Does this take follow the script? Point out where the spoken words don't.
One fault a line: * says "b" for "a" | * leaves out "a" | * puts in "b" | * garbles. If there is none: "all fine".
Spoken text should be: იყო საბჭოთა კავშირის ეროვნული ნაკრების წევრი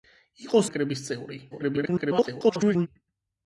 * leaves out "საბჭოთა კავშირის ეროვნული"
* garbles